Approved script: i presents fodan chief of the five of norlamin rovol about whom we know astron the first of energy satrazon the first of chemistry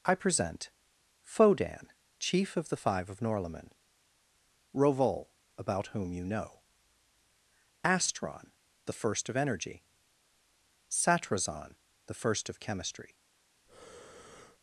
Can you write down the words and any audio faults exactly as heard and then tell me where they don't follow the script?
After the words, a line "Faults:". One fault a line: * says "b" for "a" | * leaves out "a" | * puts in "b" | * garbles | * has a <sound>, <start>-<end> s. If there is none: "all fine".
i present fodan chief of the five of norlamin rovol about whom you know astron the first of energy satrazon the first of chemistry
Faults:
* says "present" for "presents"
* says "you" for "we"
* has a breath, 13.7-14.6 s